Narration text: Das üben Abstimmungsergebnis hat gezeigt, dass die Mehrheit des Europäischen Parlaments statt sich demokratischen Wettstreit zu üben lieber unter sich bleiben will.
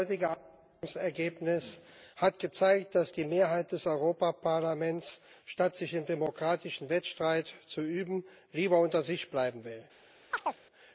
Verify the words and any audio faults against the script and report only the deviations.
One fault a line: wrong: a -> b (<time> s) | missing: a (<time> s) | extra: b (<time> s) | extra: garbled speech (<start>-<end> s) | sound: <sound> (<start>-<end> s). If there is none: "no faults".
wrong: üben -> heutige (0.1 s)
extra: im (5.9 s)
sound: chirp (10.3-10.6 s)